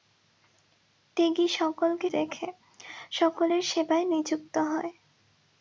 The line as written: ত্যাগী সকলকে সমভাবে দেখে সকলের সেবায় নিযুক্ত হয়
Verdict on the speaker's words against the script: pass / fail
fail